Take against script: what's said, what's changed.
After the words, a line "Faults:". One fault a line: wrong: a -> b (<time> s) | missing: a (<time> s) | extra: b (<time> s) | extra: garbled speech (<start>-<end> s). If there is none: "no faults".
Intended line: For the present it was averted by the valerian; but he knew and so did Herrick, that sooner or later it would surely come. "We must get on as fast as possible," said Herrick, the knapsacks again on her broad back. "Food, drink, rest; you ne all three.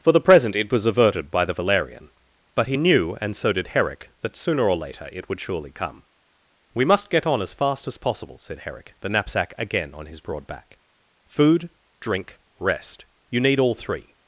For the present it was averted by the valerian; but he knew and so did Herrick, that sooner or later it would surely come. "We must get on as fast as possible," said Herrick, the knapsack again on his broad back. "Food, drink, rest; you need all three.
Faults:
wrong: knapsacks -> knapsack (9.1 s)
wrong: her -> his (10.1 s)
wrong: ne -> need (13.4 s)